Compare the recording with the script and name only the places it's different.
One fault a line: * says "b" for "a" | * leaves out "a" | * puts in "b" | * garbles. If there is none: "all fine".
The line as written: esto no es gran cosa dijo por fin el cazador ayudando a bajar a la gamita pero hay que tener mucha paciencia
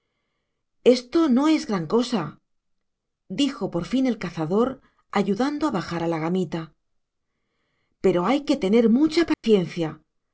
all fine